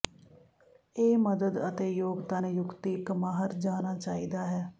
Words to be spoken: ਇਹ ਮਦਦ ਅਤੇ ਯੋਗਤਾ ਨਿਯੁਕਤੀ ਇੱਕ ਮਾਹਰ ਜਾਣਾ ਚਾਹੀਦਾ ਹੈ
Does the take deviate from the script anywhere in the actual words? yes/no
no